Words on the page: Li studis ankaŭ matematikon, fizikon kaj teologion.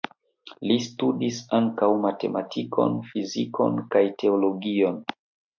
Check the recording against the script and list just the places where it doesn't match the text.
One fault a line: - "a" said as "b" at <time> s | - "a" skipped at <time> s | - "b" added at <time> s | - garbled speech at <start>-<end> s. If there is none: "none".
none